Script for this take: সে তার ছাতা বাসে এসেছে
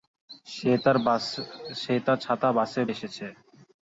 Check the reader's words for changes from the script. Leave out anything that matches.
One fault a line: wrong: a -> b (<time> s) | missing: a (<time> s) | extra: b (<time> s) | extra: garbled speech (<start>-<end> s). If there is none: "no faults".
no faults